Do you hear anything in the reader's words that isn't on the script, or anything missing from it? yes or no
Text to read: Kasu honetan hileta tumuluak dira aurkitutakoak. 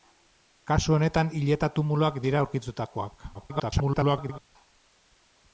yes